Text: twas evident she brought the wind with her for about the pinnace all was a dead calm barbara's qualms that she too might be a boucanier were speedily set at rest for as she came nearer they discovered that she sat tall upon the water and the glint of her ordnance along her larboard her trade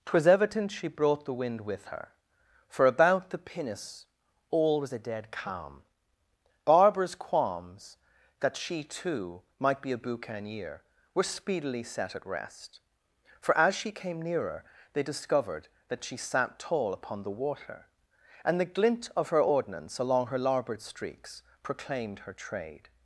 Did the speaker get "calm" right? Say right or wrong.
right